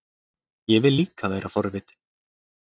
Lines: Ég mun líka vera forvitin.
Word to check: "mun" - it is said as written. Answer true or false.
false